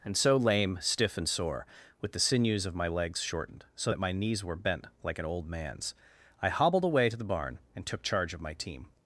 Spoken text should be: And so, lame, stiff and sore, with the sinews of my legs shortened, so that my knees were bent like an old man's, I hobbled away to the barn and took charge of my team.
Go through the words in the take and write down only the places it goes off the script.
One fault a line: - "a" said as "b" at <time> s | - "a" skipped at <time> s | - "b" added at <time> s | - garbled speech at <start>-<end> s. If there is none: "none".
none